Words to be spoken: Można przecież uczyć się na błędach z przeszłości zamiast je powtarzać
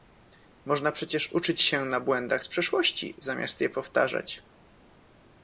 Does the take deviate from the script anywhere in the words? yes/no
no